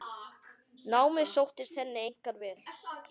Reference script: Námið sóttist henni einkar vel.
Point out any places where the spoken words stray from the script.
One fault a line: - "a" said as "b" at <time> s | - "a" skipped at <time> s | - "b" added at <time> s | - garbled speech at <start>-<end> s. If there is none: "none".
none